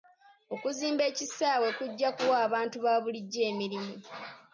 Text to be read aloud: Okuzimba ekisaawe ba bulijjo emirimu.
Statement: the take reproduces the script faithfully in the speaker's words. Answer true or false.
false